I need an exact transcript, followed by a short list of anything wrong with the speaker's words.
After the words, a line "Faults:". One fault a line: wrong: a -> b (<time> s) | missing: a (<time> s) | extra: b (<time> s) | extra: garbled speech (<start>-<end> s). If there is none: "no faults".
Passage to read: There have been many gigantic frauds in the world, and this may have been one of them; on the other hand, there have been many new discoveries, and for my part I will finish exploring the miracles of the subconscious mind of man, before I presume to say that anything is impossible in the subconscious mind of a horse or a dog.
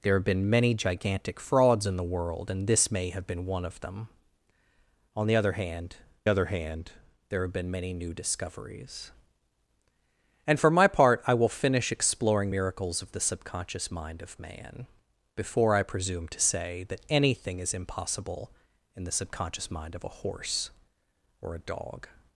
There have been many gigantic frauds in the world, and this may have been one of them; on the other hand other hand, there have been many new discoveries, and for my part I will finish exploring miracles of the subconscious mind of man, before I presume to say that anything is impossible in the subconscious mind of a horse or a dog.
Faults:
extra: other hand (6.3 s)
missing: the (12.5 s)